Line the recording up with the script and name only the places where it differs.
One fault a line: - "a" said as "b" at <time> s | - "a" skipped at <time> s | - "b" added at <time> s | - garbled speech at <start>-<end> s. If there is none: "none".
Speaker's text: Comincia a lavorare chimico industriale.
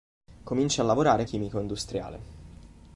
none